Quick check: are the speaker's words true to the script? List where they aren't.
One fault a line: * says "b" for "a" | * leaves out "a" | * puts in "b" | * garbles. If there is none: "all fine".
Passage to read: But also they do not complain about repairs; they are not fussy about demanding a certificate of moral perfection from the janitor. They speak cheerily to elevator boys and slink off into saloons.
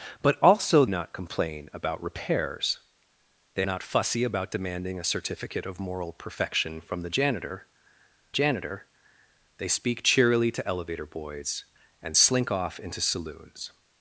* leaves out "they do"
* leaves out "are"
* puts in "janitor"